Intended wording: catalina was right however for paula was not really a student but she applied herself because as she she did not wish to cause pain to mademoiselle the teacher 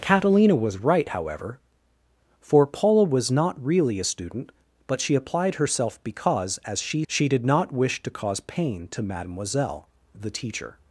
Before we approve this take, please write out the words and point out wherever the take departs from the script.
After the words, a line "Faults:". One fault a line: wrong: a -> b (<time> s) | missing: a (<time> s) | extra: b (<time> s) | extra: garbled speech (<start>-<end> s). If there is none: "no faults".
catalina was right however for paula was not really a student but she applied herself because as she she did not wish to cause pain to mademoiselle the teacher
Faults:
no faults